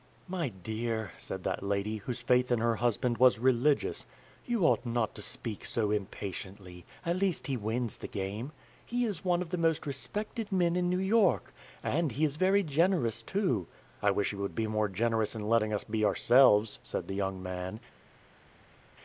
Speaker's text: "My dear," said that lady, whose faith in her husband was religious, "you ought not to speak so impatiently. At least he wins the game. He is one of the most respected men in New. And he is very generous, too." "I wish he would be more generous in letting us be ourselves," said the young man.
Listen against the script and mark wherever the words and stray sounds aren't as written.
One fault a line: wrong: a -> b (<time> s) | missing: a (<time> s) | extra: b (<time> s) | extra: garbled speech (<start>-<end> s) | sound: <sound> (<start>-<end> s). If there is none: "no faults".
extra: York (11.0 s)